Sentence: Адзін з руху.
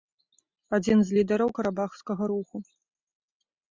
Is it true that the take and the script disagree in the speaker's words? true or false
true